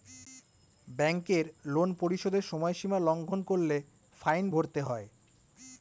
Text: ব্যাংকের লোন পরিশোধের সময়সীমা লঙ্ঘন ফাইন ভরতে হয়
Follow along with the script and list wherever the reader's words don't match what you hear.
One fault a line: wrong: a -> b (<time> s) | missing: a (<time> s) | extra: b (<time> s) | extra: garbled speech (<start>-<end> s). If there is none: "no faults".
extra: করলে (3.4 s)